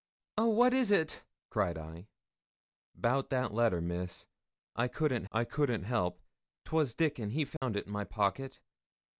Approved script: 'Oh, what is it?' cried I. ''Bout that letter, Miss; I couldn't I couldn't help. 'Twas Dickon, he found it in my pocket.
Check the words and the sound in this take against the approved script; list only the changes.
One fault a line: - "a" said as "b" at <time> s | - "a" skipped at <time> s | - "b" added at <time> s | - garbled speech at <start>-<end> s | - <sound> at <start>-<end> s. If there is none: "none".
- dropout at 7.6-7.6 s